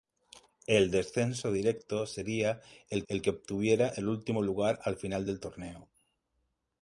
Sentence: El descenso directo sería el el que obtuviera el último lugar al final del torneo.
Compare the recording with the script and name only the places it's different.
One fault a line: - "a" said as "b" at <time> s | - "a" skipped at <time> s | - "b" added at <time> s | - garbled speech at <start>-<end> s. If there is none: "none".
none